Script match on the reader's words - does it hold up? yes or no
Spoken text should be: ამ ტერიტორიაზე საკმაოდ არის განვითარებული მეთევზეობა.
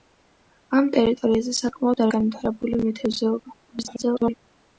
no